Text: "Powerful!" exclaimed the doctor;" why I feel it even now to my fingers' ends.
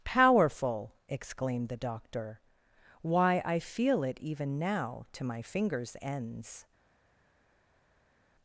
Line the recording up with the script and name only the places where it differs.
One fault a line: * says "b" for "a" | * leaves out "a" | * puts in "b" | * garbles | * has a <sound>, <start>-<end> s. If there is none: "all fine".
all fine